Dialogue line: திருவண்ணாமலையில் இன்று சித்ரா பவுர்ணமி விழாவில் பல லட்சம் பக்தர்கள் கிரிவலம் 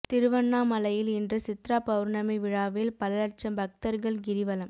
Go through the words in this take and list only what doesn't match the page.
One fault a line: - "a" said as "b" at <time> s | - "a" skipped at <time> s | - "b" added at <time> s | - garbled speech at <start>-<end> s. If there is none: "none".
none